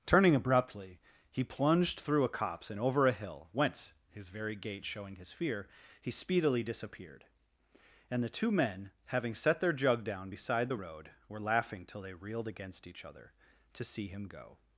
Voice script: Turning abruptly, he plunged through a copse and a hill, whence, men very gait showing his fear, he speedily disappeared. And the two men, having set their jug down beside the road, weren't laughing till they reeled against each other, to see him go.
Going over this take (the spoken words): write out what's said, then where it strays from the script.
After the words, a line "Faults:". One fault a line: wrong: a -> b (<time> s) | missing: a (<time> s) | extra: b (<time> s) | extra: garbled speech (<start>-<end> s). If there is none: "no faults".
Turning abruptly, he plunged through a copse and over a hill, whence, his very gait showing his fear, he speedily disappeared. And the two men, having set their jug down beside the road, were laughing till they reeled against each other, to see him go.
Faults:
extra: over (2.8 s)
wrong: men -> his (4.1 s)
wrong: weren't -> were (11.3 s)